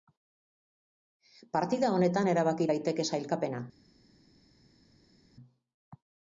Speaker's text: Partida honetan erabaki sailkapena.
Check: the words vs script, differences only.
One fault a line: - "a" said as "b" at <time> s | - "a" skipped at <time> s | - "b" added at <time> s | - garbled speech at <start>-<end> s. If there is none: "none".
- "daiteke" added at 2.7 s